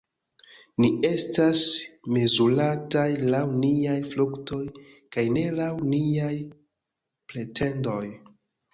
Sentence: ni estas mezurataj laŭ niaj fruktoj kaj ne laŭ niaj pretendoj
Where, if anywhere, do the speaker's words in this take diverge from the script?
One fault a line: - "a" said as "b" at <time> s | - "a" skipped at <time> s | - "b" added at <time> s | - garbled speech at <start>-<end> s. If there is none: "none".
none